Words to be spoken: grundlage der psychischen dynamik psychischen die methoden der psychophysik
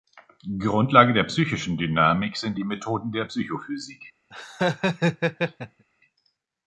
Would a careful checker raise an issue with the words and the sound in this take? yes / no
yes